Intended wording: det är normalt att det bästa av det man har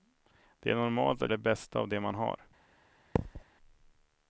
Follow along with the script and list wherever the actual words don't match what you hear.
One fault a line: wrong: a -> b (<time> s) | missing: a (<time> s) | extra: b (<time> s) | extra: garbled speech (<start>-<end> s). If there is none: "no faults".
no faults